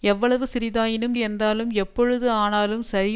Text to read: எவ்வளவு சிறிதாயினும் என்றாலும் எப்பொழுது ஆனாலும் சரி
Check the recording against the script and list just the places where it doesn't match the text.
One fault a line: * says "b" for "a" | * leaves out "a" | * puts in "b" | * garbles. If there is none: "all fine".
all fine